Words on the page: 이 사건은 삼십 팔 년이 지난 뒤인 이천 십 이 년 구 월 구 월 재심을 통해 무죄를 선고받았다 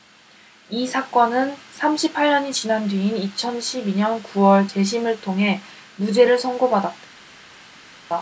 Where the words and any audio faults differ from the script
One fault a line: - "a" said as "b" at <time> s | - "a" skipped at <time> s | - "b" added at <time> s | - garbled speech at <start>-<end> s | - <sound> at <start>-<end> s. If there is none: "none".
- "구 월" skipped at 4.7 s